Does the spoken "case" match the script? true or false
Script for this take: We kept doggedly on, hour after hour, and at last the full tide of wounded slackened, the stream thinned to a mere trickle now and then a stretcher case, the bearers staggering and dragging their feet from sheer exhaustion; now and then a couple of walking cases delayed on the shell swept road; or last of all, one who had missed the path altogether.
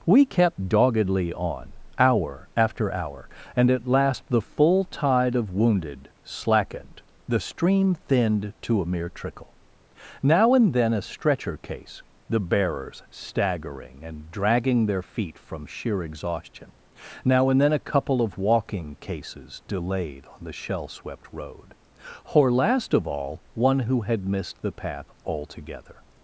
true